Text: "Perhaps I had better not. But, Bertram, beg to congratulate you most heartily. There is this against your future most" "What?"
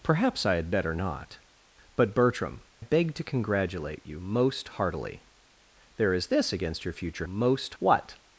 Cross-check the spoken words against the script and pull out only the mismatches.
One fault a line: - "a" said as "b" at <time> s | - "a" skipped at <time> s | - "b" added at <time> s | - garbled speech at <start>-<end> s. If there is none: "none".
none